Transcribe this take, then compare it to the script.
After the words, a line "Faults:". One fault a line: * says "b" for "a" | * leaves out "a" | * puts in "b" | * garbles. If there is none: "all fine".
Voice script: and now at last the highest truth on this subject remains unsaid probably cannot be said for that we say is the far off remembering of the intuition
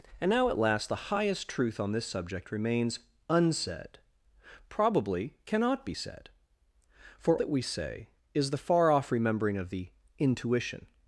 and now at last the highest truth on this subject remains unsaid probably cannot be said for that we say is the far off remembering of the intuition
Faults:
all fine